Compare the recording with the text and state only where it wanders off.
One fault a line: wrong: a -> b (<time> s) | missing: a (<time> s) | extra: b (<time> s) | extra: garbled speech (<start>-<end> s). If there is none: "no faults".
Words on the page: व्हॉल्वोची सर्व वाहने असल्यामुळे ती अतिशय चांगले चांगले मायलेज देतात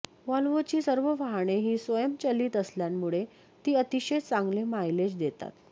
extra: ही स्वयंचलित (1.6 s)
missing: चांगले (4.6 s)